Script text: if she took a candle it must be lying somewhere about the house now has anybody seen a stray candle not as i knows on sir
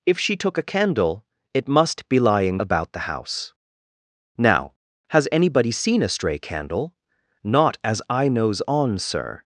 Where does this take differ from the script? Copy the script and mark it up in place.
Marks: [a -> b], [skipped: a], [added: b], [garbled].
if she took a candle it must be lying [skipped: somewhere] about the house now has anybody seen a stray candle not as i knows on sir